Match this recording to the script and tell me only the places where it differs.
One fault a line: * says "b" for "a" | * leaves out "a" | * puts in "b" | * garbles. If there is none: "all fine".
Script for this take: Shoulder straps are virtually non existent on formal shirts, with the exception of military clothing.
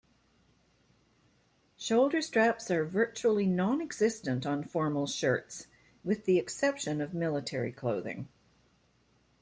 all fine